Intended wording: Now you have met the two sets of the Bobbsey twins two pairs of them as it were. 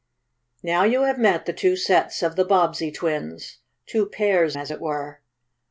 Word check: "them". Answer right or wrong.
wrong